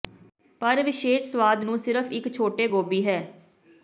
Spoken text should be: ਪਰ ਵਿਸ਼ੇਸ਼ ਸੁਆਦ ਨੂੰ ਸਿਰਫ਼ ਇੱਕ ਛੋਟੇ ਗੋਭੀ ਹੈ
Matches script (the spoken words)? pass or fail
pass